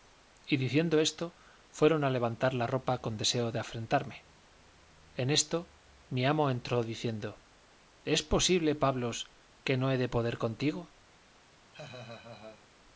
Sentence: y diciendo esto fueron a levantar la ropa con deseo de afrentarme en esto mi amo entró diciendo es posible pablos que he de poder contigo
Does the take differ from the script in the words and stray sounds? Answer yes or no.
yes